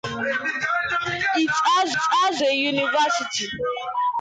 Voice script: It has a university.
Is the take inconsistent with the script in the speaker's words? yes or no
yes